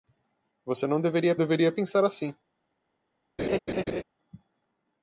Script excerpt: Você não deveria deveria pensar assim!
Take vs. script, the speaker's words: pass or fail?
pass